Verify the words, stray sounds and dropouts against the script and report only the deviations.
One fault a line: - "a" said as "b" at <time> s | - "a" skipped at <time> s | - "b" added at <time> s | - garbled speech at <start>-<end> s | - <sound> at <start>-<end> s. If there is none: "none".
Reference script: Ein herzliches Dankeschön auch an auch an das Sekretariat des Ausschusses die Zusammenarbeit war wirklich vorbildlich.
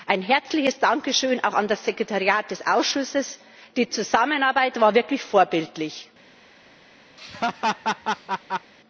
- "auch an" skipped at 1.7 s
- laugh at 7.2-8.7 s